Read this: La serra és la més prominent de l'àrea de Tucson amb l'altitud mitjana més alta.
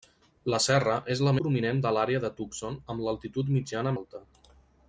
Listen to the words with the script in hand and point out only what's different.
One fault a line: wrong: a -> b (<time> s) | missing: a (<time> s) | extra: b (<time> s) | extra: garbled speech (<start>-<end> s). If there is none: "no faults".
missing: més (1.3 s)
missing: més (3.9 s)